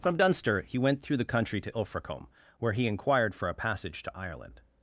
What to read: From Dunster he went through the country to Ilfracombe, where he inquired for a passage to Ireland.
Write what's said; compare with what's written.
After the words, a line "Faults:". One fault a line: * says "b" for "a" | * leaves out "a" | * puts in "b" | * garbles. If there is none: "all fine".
From Dunster he went through the country to Ilfracombe, where he inquired for a passage to Ireland.
Faults:
all fine